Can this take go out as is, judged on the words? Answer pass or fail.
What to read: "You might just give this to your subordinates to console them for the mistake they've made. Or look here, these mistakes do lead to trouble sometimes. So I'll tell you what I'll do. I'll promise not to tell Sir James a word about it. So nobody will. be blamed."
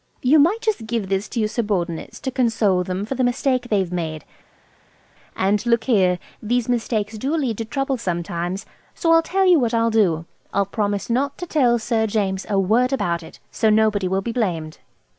fail